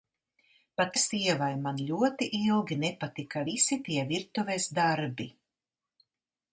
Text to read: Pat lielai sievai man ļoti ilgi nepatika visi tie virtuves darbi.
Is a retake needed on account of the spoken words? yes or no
yes